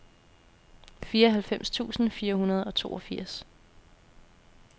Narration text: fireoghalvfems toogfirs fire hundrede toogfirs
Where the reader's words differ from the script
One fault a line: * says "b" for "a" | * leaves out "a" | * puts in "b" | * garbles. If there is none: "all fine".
* says "tusind" for "toogfirs"
* puts in "og"